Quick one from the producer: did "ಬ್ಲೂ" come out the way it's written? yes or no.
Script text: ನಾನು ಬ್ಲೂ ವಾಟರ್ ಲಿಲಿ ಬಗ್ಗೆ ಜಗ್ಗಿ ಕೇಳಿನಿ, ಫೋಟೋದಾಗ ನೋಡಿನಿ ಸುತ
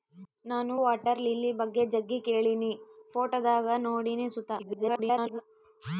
no